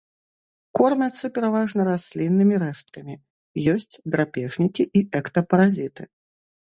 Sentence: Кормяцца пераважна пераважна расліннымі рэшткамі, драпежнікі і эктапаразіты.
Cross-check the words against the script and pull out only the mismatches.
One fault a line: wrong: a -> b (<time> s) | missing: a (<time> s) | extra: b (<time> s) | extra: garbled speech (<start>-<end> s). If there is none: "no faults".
missing: пераважна (1.8 s)
extra: ёсць (3.7 s)